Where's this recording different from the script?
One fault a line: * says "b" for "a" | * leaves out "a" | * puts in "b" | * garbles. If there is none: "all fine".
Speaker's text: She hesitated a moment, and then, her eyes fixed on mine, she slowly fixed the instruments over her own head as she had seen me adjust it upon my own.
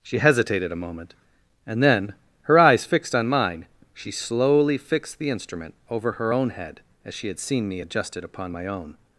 * says "instrument" for "instruments"